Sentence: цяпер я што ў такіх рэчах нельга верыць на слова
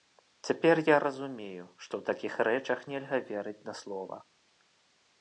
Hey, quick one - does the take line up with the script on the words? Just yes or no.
no